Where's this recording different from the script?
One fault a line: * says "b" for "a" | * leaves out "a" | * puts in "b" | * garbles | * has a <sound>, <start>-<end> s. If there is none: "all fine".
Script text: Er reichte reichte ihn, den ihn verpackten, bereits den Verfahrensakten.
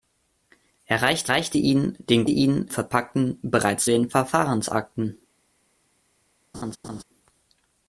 * has a laugh, 6.5-7.0 s